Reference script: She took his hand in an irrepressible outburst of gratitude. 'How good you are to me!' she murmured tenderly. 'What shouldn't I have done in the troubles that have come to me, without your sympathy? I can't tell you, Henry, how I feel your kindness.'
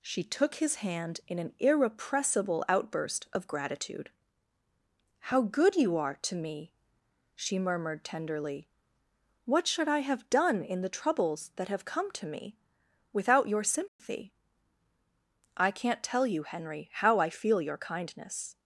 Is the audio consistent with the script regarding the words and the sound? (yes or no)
no